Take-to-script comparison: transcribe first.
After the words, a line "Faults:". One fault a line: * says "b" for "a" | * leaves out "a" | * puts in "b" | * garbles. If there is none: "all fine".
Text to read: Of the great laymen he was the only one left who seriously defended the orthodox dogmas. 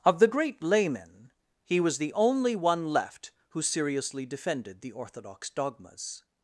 Of the great laymen he was the only one left who seriously defended the orthodox dogmas.
Faults:
all fine